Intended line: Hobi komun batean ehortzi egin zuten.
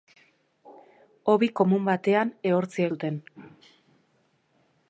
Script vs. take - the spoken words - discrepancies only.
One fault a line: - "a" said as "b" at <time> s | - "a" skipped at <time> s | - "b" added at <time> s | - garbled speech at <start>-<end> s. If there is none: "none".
- "egin" skipped at 2.9 s